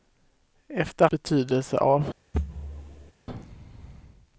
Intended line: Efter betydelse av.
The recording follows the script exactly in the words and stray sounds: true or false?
false